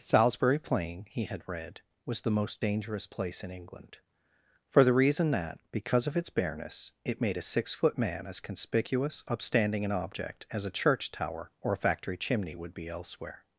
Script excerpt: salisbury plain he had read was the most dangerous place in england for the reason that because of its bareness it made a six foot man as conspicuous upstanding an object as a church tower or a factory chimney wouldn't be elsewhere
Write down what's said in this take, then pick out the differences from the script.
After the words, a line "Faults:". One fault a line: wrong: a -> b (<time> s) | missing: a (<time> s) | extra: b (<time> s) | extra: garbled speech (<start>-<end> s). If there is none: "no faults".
salisbury plain he had read was the most dangerous place in england for the reason that because of its bareness it made a six foot man as conspicuous upstanding an object as a church tower or a factory chimney would be elsewhere
Faults:
wrong: wouldn't -> would (12.5 s)